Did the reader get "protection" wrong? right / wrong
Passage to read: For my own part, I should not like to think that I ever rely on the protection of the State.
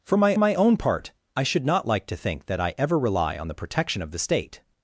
right